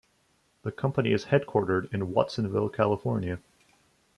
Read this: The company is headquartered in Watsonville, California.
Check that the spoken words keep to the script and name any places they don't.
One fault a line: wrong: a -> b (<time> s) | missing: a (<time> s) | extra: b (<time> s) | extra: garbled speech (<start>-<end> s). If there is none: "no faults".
no faults